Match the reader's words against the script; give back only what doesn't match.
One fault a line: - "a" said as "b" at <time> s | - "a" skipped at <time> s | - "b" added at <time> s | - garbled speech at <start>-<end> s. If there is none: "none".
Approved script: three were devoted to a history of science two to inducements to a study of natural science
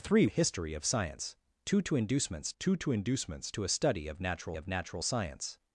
- "were devoted to" skipped at 0.2 s
- "two" added at 2.6 s
- "inducements to" added at 2.9 s
- "of natural" added at 4.5 s